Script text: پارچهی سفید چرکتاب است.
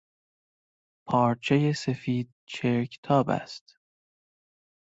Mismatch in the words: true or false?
false